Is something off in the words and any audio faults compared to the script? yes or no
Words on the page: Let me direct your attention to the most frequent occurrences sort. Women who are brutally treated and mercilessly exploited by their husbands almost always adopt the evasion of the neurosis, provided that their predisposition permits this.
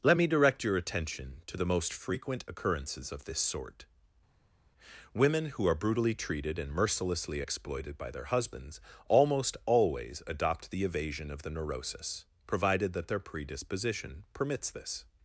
yes